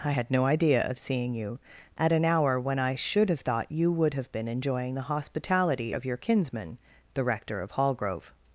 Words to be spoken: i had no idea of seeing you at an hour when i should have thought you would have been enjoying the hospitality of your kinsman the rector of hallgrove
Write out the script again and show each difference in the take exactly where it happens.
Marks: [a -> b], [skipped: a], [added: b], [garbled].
i had no idea of seeing you at an hour when i should have thought you would have been enjoying the hospitality of your kinsman the rector of hallgrove